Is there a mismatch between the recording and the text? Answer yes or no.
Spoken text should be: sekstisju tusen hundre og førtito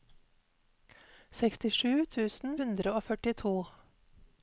no